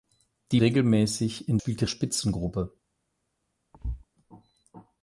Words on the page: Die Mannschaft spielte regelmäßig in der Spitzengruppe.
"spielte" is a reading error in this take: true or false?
true